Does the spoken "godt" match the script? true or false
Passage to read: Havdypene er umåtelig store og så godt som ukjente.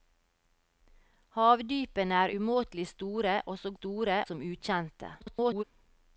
false